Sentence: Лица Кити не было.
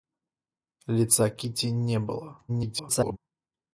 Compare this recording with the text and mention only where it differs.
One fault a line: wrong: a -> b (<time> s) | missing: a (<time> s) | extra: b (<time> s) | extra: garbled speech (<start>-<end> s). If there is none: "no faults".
extra: garbled speech (2.5-3.2 s)